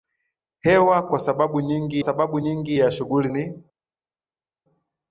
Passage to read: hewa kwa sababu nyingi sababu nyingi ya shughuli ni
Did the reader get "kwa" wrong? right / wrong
right